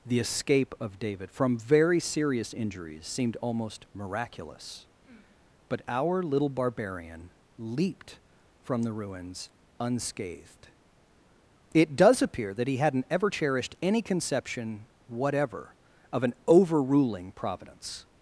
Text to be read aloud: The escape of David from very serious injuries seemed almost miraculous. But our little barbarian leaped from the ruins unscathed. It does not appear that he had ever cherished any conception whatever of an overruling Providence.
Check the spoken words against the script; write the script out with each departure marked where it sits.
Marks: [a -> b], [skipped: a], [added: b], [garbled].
The escape of David from very serious injuries seemed almost miraculous. But our little barbarian leaped from the ruins unscathed. It does [skipped: not] appear that he [had -> hadn't] ever cherished any conception whatever of an overruling Providence.